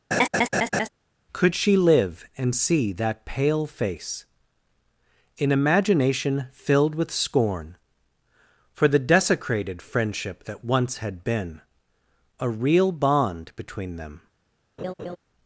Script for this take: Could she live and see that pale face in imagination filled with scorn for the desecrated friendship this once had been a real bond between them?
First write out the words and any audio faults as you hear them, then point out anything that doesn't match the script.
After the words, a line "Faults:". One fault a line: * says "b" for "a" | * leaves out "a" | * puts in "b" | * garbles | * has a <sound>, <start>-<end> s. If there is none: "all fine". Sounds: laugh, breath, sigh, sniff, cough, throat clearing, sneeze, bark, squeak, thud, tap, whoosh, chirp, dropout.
Could she live and see that pale face in imagination filled with scorn for the desecrated friendship that once had been a real bond between them?
Faults:
* has a laugh, 0.1-0.9 s
* says "that" for "this"
* has a laugh, 14.8-15.2 s